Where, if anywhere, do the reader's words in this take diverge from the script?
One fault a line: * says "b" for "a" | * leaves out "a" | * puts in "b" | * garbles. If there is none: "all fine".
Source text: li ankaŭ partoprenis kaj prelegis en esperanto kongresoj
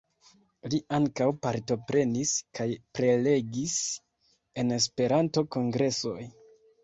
all fine